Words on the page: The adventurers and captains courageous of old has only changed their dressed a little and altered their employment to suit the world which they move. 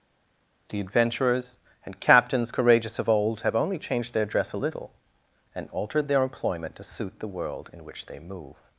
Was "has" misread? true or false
true